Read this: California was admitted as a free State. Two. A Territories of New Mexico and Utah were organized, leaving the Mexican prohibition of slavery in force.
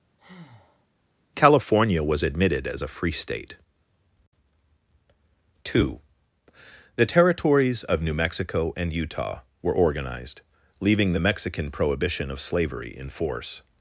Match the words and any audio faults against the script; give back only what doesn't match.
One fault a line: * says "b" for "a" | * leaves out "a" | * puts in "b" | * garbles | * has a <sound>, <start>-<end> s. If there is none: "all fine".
* has a breath, 0.2-0.9 s
* says "The" for "A"